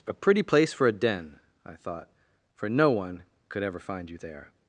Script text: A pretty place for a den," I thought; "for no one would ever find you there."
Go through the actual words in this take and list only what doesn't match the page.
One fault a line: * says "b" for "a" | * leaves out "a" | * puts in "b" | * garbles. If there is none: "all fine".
* says "could" for "would"